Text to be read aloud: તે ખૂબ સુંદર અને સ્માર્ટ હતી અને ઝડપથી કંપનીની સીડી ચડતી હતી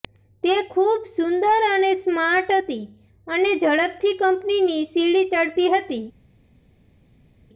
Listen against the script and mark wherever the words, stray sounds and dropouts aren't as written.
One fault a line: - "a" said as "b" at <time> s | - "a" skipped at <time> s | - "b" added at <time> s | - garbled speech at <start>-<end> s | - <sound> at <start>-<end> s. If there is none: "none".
none